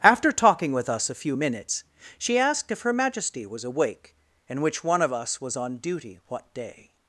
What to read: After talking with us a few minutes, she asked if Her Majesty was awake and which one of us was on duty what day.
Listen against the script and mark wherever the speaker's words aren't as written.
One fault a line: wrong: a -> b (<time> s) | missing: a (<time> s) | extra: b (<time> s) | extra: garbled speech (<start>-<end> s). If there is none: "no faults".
no faults